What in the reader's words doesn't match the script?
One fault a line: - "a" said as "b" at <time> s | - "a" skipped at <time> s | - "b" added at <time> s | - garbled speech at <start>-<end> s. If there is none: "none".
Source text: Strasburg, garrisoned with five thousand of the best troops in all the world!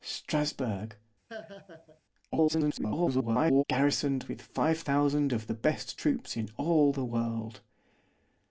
- garbled speech at 2.3-3.6 s